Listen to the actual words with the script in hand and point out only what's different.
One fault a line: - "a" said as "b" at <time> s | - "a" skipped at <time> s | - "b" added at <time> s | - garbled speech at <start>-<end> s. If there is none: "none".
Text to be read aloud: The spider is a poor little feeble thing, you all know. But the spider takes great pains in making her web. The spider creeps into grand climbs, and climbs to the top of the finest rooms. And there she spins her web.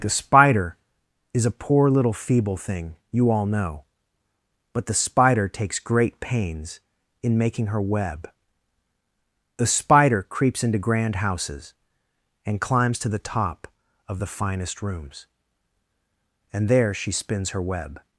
- "climbs" said as "houses" at 11.2 s